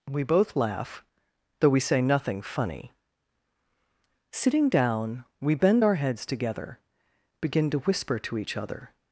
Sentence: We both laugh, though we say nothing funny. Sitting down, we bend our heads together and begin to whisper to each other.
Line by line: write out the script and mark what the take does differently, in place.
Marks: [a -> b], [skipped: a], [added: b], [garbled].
We both laugh, though we say nothing funny. Sitting down, we bend our heads together [skipped: and] begin to whisper to each other.